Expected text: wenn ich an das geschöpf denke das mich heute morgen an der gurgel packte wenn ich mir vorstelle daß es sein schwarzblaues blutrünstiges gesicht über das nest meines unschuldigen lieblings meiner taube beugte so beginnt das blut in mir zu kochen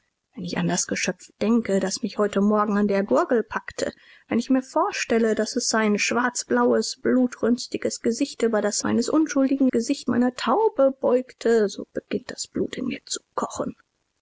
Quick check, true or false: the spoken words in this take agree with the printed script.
false